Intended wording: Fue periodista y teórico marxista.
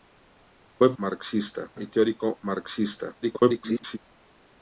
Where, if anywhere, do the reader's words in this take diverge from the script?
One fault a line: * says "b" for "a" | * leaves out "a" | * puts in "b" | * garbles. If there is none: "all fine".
* says "marxista" for "periodista"
* garbles